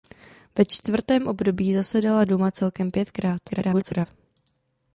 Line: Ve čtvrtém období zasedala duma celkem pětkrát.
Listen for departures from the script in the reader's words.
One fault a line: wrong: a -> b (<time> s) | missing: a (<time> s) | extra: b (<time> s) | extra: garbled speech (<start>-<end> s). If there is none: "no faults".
extra: garbled speech (3.5-4.1 s)